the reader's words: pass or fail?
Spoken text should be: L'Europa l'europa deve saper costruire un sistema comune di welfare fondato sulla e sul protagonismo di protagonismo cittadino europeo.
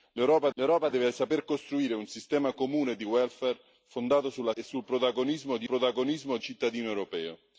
pass